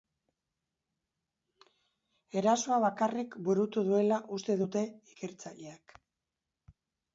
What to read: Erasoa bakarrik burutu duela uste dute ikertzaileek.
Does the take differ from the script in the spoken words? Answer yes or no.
no